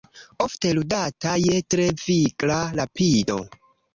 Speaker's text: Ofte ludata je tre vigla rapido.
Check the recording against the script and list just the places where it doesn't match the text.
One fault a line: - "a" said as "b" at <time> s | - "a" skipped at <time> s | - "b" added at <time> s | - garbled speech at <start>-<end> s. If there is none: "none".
none